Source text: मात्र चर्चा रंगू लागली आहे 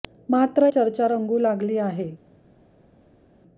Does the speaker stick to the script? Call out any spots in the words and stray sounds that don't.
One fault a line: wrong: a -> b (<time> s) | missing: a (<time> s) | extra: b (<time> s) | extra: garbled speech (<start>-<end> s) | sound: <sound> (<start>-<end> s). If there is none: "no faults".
no faults